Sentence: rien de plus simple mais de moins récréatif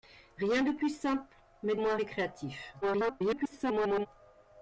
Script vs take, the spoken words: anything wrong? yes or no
yes